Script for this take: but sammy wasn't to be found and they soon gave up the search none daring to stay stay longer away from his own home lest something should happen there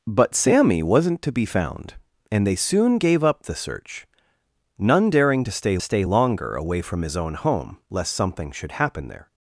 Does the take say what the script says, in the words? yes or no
yes